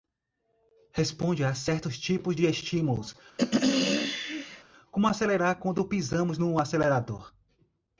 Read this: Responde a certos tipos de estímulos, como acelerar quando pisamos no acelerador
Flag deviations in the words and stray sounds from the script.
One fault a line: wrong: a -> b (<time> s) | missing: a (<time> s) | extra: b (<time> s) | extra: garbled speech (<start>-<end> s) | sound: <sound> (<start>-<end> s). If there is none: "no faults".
sound: throat clearing (3.4-4.6 s)